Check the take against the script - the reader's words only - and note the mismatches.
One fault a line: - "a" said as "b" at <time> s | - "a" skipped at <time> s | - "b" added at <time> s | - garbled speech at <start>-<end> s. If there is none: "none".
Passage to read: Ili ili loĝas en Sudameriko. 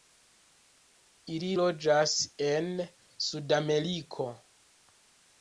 - "ili" skipped at 1.5 s